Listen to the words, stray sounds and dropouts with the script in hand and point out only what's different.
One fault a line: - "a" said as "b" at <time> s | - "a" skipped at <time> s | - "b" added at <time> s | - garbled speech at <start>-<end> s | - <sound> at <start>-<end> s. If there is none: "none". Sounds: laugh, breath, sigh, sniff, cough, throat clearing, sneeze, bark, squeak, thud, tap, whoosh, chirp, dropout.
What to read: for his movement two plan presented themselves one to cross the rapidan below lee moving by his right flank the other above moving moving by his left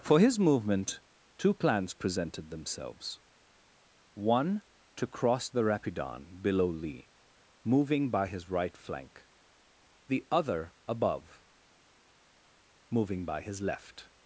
- "plan" said as "plans" at 1.5 s
- "moving" skipped at 13.3 s